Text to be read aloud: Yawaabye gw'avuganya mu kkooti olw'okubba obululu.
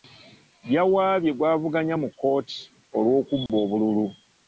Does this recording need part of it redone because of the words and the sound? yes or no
yes